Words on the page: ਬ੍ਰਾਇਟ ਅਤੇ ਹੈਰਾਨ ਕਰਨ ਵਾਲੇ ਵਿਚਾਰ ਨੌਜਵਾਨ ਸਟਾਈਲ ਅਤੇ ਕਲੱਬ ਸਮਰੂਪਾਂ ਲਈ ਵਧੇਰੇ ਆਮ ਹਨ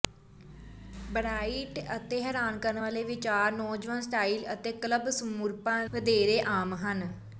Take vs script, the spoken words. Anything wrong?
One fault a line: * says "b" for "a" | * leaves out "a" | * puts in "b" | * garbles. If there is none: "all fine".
* leaves out "ਲਈ"